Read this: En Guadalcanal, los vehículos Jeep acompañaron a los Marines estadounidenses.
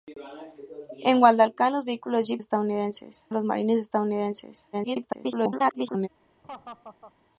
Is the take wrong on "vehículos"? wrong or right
right